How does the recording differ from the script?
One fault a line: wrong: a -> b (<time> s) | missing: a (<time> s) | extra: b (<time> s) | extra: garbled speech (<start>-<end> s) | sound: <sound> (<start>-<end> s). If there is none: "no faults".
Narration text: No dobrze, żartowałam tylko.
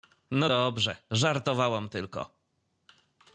no faults